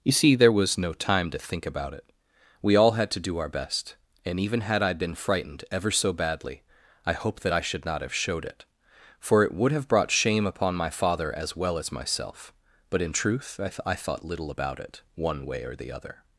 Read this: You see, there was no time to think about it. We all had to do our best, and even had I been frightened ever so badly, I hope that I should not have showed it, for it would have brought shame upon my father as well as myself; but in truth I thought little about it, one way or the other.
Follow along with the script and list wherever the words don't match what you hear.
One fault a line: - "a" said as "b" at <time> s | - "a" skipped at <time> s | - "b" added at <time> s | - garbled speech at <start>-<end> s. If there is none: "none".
- "th I" added at 13.7 s